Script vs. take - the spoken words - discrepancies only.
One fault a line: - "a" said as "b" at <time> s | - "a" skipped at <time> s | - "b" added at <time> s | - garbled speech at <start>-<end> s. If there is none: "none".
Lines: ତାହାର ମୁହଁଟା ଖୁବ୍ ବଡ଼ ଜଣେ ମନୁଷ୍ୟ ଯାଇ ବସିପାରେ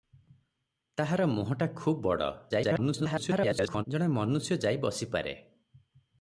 - garbled speech at 2.5-3.8 s